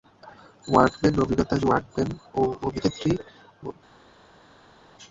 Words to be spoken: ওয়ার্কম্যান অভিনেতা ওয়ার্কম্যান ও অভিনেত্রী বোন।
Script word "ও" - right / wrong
right